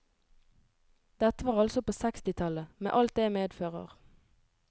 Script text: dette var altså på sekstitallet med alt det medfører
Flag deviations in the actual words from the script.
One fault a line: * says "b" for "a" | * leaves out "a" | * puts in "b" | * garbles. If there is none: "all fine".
all fine